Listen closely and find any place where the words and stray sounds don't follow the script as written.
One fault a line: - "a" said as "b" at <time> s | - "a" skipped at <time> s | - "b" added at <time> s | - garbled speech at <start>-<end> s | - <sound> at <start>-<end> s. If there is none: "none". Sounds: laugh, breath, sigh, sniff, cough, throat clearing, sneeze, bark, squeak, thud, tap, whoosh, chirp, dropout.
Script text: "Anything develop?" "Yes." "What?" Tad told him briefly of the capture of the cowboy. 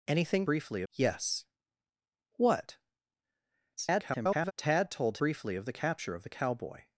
- "develop" said as "briefly" at 0.4 s
- garbled speech at 3.8-4.5 s
- "him" skipped at 5.2 s